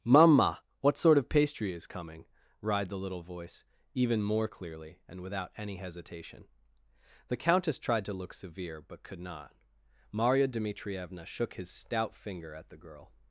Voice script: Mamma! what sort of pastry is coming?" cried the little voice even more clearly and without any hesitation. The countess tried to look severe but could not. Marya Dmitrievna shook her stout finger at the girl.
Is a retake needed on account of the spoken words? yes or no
yes